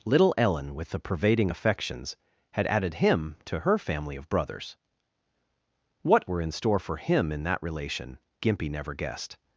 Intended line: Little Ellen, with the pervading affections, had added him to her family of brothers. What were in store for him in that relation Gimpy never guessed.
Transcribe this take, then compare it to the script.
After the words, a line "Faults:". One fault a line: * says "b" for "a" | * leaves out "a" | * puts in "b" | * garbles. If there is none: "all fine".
Little Ellen, with the pervading affections, had added him to her family of brothers. What were in store for him in that relation Gimpy never guessed.
Faults:
all fine